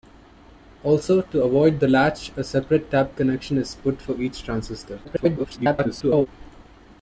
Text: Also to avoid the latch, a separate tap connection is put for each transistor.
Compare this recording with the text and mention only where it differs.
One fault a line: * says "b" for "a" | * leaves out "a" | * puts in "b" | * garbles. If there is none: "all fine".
* garbles